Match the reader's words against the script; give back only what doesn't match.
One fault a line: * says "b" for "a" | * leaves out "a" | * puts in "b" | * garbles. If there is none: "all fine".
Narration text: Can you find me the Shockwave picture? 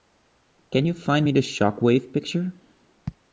all fine